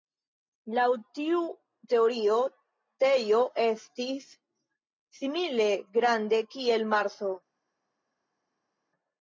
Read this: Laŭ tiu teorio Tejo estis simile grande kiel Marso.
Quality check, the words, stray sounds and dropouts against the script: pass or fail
pass